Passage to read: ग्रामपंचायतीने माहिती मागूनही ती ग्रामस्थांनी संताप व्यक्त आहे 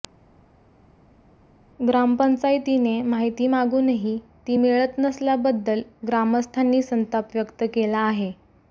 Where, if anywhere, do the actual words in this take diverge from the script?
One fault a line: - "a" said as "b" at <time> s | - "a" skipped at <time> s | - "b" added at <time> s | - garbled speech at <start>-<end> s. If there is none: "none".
- "मिळत नसल्याबद्दल" added at 4.5 s
- "केला" added at 7.7 s